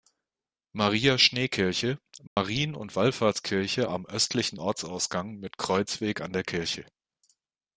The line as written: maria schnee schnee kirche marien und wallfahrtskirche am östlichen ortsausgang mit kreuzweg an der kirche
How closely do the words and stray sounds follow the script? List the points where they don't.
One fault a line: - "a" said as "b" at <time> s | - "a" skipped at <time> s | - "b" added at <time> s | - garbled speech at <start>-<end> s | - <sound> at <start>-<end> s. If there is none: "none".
- "schnee" skipped at 1.5 s
- dropout at 2.3-2.4 s